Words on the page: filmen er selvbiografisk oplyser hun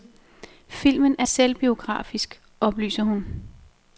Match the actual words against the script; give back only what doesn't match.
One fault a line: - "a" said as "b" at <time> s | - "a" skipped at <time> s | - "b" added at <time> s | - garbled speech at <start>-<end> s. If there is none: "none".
none